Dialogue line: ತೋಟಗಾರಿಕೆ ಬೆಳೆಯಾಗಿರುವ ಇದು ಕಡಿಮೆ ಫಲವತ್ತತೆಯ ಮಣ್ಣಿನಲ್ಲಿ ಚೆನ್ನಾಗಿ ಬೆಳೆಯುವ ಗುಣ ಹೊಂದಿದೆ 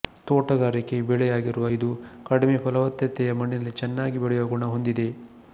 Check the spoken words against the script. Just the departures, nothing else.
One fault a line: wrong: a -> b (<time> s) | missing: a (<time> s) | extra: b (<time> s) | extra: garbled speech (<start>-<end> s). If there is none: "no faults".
no faults